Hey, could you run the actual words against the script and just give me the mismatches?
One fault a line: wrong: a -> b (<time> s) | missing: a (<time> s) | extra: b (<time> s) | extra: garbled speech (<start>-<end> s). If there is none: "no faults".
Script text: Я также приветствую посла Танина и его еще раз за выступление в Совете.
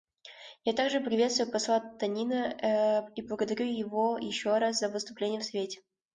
extra: благодарю (3.2 s)